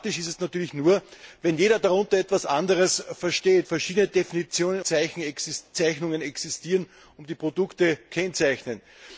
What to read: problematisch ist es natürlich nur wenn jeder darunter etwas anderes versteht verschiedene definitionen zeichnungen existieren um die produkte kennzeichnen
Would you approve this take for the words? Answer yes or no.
yes